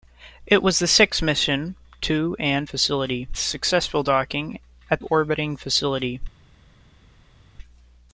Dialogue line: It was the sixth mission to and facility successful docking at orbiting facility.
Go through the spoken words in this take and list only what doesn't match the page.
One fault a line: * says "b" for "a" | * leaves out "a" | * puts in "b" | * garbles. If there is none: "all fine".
all fine